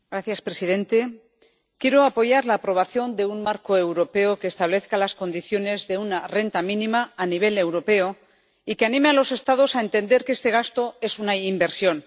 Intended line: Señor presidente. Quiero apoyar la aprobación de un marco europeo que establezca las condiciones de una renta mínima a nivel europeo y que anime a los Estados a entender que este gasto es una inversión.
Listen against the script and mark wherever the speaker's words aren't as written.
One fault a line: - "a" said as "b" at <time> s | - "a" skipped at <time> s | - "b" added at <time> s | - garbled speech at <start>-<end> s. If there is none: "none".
none